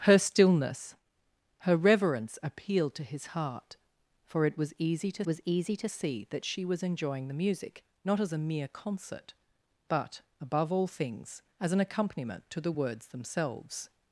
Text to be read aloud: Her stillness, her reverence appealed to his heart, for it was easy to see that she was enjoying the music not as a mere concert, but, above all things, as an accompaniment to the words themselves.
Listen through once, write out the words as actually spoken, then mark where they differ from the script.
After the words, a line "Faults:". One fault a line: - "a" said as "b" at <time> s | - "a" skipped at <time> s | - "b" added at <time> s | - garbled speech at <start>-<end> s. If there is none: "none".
Her stillness, her reverence appealed to his heart, for it was easy to was easy to see that she was enjoying the music not as a mere concert, but, above all things, as an accompaniment to the words themselves.
Faults:
- "was easy to" added at 5.3 s